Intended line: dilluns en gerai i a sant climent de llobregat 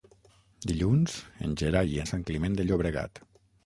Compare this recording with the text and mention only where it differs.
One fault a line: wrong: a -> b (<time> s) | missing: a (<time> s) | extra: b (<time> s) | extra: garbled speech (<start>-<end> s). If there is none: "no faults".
no faults